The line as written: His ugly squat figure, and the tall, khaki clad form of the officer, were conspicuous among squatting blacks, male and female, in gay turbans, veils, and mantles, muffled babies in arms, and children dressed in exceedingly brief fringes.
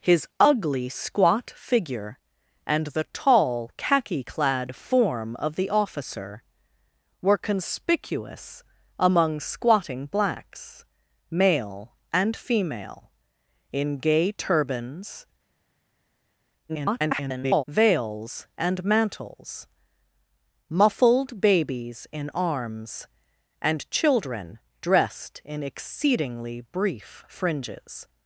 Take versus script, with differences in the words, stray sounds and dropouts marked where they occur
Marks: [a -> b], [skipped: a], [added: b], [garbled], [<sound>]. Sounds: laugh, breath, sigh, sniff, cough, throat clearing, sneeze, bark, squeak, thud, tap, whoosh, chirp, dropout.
His ugly squat figure, and the tall, khaki clad form of the officer, were conspicuous among squatting blacks, male and female, in gay turbans, [garbled] veils, and mantles, muffled babies in arms, and children dressed in exceedingly brief fringes.